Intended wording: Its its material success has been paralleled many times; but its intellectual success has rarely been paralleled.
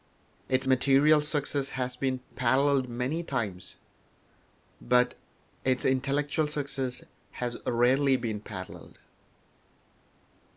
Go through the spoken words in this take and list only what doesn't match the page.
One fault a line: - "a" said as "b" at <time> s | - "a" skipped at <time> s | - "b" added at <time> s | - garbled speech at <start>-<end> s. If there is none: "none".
- "its" skipped at 0.7 s